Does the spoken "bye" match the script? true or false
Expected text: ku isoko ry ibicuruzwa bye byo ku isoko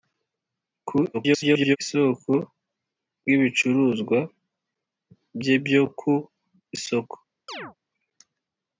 true